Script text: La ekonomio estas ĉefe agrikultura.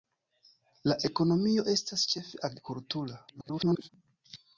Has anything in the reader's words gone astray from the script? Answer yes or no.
yes